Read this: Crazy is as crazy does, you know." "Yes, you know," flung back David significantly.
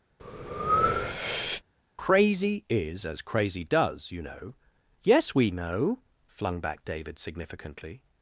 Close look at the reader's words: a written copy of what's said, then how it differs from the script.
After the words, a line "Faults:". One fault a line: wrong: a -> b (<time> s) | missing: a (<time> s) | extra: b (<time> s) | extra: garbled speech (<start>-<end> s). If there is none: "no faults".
Crazy is as crazy does, you know." "Yes, we know," flung back David significantly.
Faults:
wrong: you -> we (5.3 s)